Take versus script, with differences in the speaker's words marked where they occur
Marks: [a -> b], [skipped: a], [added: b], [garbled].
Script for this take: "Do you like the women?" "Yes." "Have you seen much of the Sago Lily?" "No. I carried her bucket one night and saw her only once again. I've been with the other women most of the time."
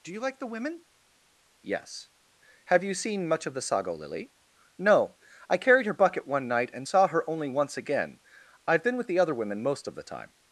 "Do you like the women?" "Yes." "Have you seen much of the Sago Lily?" "No. I carried her bucket one night and saw her only once again. I've been with the other women most of the time."